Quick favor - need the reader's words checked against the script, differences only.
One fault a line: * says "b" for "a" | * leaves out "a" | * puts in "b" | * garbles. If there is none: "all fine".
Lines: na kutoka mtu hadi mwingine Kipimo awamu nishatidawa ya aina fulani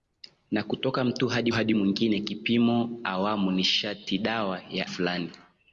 * puts in "hadi"
* leaves out "aina"